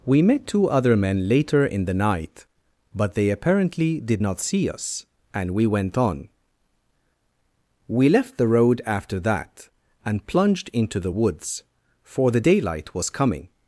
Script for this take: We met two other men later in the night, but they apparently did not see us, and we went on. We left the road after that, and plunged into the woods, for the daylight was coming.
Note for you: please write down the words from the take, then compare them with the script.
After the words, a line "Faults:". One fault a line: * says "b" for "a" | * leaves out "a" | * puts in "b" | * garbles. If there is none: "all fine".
We met two other men later in the night, but they apparently did not see us, and we went on. We left the road after that, and plunged into the woods, for the daylight was coming.
Faults:
all fine